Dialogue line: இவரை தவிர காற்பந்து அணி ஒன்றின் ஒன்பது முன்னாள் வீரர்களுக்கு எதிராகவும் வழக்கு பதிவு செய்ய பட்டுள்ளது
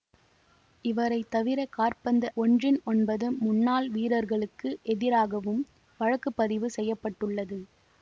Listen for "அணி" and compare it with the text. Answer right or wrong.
wrong